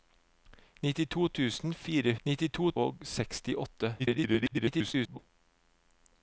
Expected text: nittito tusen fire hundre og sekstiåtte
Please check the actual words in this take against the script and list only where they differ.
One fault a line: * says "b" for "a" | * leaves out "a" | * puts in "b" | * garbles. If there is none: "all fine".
* says "nittito" for "hundre"
* garbles